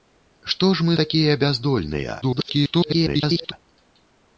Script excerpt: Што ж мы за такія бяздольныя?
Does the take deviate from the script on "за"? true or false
true